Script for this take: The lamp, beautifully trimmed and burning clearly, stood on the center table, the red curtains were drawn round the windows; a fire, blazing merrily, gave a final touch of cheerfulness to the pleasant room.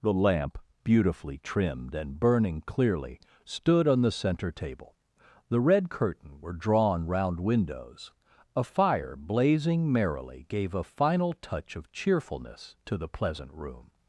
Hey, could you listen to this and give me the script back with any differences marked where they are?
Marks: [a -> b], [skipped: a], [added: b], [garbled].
The lamp, beautifully trimmed and burning clearly, stood on the center table, the red [curtains -> curtain] were drawn round [skipped: the] windows; a fire, blazing merrily, gave a final touch of cheerfulness to the pleasant room.